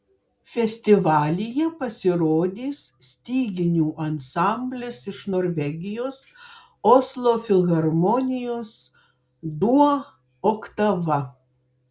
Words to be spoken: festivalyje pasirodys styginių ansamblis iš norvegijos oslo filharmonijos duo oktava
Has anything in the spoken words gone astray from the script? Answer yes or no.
no